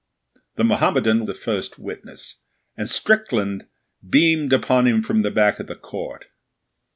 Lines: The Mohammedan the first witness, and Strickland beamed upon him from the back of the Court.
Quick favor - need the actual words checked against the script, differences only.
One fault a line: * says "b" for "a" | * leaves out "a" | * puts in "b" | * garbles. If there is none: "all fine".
all fine